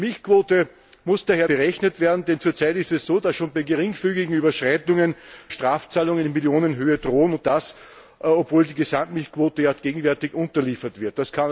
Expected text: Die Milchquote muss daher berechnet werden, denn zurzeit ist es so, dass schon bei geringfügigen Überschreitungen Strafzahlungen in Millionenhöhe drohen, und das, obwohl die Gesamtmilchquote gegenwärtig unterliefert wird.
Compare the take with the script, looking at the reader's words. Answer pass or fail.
pass